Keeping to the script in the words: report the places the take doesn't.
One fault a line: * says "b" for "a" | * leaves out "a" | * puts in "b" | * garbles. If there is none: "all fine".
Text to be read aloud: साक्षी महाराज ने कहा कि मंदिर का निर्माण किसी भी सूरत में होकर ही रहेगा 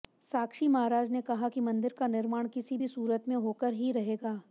all fine